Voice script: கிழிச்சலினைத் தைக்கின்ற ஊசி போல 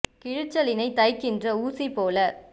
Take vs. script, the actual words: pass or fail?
pass